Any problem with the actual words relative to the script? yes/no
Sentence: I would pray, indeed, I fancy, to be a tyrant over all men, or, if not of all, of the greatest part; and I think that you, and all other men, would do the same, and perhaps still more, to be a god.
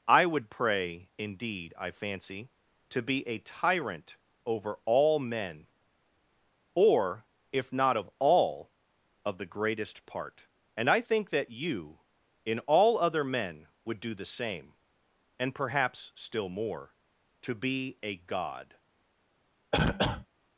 yes